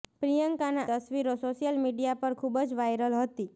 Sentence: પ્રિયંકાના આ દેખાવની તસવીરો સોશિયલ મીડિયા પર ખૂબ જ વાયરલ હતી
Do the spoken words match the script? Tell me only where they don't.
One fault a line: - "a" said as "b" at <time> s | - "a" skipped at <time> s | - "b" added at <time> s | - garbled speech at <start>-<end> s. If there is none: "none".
- "આ દેખાવની" skipped at 0.8 s